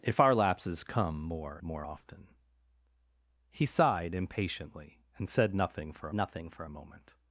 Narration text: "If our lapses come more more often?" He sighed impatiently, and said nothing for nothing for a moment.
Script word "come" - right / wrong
right